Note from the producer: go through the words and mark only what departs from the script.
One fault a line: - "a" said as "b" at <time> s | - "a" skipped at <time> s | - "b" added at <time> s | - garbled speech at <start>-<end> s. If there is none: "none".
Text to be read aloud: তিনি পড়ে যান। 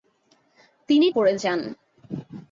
none